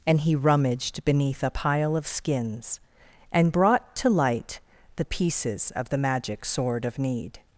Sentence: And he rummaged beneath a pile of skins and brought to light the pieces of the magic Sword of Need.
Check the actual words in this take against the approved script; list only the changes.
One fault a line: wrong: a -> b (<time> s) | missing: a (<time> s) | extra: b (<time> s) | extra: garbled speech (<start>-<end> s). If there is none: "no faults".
no faults